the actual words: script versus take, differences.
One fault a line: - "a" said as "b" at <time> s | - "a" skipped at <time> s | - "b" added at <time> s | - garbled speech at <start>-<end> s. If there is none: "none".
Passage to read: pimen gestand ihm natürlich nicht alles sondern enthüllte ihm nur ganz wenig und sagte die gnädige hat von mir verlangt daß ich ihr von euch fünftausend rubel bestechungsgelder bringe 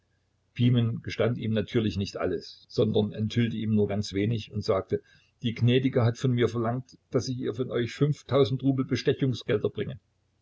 none